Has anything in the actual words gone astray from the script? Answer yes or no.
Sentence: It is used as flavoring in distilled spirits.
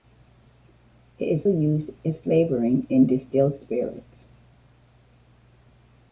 no